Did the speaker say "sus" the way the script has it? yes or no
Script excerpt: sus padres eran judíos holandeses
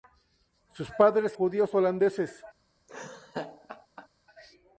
yes